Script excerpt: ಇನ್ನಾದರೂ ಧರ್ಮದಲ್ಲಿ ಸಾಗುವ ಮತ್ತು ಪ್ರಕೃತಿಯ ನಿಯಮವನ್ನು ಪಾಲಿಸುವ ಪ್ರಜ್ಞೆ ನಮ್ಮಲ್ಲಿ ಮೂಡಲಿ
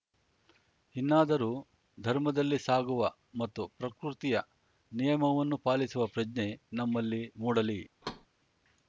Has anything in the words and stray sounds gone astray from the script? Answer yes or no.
yes